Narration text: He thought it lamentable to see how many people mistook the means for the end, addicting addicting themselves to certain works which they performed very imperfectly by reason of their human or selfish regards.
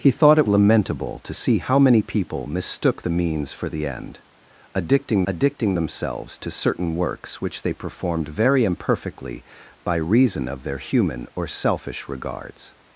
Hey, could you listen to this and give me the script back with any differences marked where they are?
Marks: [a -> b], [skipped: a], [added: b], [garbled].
He thought it lamentable to see how many people mistook the means for the end, addicting addicting themselves to certain works which they performed very imperfectly by reason of their human or selfish regards.